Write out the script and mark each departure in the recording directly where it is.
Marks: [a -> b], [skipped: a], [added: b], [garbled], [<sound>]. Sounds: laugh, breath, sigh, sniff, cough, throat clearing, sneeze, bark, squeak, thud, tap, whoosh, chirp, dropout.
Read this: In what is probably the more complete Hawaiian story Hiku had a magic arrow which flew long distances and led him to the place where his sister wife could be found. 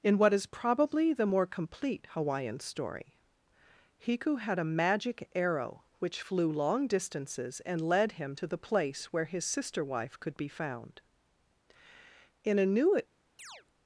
In what is probably the more complete Hawaiian story Hiku had a magic arrow which flew long distances and led him to the place where his sister wife could be found. [added: In a New] [chirp]